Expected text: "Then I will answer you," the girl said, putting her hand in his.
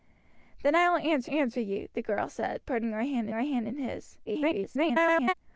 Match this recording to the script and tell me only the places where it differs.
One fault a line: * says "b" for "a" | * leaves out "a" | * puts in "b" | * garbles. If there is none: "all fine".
* puts in "answer"
* puts in "her hand"
* garbles